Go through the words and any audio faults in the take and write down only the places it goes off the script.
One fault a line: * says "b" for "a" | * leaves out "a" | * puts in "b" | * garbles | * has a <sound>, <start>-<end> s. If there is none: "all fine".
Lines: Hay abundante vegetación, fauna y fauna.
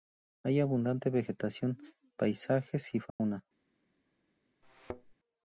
* says "paisajes" for "fauna"
* has a dropout, 3.1-3.2 s
* has a thud, 4.6-5.1 s